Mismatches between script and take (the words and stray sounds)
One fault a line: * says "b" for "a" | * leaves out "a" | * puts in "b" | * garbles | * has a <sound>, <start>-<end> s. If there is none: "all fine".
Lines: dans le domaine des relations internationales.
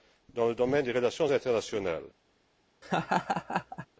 * has a laugh, 2.8-3.9 s